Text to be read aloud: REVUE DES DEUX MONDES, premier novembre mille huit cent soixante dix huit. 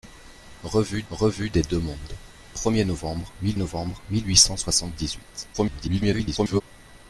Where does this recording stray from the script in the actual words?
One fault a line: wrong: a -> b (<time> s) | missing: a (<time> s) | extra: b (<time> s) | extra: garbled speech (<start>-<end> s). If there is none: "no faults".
extra: revue (1.1 s)
extra: novembre mille (3.6 s)
extra: garbled speech (5.5-6.6 s)